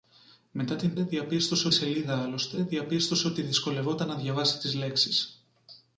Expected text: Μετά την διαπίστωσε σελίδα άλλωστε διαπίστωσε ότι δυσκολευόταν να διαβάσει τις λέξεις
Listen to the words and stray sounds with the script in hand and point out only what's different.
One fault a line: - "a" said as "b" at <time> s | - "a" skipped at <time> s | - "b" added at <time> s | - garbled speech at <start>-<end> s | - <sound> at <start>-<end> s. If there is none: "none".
none